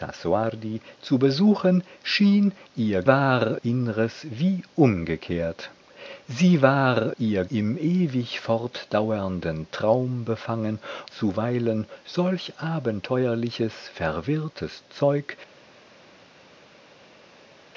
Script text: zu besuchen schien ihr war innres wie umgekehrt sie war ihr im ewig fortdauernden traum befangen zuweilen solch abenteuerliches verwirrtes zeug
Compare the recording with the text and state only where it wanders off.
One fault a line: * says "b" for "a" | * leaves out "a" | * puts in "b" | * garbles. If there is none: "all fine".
all fine